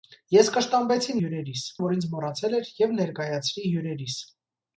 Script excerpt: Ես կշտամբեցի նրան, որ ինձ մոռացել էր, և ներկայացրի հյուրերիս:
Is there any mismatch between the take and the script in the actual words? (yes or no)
yes